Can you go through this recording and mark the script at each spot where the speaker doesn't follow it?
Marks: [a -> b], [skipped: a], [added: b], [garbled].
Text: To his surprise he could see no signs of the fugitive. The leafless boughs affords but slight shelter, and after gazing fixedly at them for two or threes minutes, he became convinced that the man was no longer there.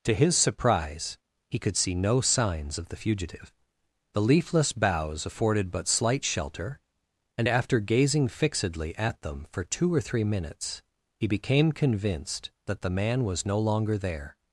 To his surprise he could see no signs of the fugitive. The leafless boughs [affords -> afforded] but slight shelter, and after gazing fixedly at them for two or [threes -> three] minutes, he became convinced that the man was no longer there.